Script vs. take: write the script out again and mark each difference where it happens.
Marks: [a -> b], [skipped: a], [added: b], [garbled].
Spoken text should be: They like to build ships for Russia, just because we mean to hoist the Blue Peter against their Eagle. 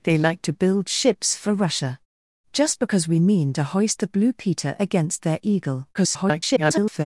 They like to build ships for Russia, just because we mean to hoist the Blue Peter against their Eagle. [garbled]